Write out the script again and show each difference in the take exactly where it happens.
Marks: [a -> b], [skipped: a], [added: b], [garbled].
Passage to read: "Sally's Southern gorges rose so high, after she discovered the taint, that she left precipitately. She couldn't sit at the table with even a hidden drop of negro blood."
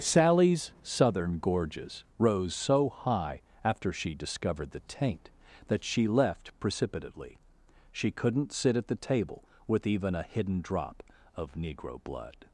"Sally's Southern gorges rose so high, after she discovered the taint, that she left precipitately. She couldn't sit at the table with even a hidden drop of negro blood."